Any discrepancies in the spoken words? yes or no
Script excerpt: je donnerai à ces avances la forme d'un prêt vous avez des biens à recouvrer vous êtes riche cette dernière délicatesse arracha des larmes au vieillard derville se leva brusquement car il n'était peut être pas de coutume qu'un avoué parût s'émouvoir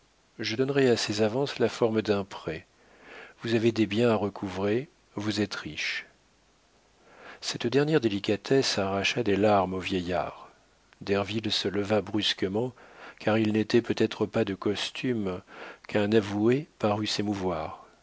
no